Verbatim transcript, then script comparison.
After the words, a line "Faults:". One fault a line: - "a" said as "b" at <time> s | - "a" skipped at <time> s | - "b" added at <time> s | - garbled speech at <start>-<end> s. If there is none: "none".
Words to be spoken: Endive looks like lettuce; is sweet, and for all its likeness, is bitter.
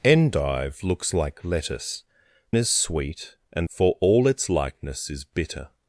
Endive looks like lettuce; is sweet, and for all its likeness, is bitter.
Faults:
none